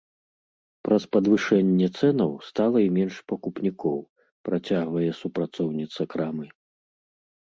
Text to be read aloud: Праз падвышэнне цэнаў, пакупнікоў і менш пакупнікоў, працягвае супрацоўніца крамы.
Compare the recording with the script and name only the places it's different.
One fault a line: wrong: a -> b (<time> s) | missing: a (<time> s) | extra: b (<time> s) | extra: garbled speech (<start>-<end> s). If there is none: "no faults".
wrong: пакупнікоў -> стала (2.5 s)